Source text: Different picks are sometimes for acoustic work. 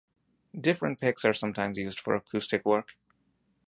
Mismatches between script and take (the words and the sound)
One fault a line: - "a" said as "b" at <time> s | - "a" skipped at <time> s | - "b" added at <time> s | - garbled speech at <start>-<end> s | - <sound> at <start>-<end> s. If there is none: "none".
- "used" added at 1.7 s